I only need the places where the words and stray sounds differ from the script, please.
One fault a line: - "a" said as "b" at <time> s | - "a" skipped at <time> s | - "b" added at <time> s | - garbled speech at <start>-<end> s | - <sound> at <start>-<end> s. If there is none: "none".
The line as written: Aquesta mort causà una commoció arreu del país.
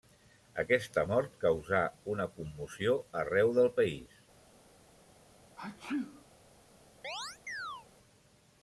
- sneeze at 5.6-6.3 s
- chirp at 7.0-7.9 s